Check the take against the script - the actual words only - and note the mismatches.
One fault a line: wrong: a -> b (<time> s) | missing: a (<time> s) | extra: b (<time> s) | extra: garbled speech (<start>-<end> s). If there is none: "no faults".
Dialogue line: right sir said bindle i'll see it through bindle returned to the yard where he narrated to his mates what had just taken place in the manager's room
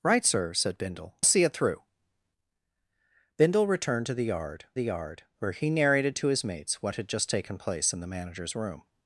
missing: i'll (1.1 s)
extra: the yard (4.7 s)